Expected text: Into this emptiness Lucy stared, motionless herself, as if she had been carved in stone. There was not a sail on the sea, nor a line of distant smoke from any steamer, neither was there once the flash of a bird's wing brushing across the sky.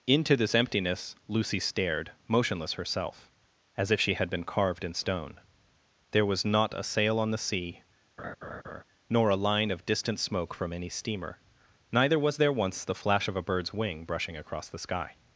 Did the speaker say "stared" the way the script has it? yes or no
yes